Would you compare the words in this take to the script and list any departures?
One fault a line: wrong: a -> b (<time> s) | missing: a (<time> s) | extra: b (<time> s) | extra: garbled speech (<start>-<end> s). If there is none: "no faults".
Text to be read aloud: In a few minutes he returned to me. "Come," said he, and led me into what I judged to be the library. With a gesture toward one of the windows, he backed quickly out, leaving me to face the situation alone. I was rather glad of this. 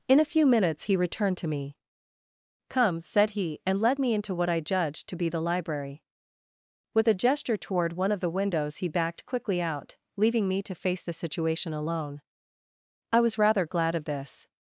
no faults